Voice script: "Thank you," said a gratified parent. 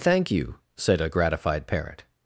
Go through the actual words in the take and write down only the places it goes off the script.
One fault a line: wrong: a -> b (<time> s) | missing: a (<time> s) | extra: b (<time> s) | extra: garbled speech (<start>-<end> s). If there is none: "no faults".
no faults